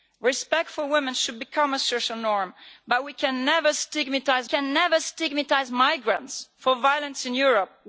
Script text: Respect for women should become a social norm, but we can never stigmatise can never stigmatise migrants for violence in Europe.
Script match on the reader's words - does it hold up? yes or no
yes